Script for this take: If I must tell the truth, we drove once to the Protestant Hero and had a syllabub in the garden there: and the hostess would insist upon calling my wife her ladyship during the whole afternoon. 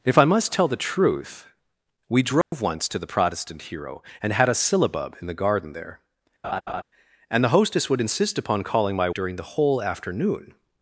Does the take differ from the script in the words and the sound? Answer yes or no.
yes